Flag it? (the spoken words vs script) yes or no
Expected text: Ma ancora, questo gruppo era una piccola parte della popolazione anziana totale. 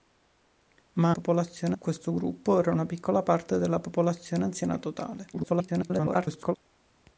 yes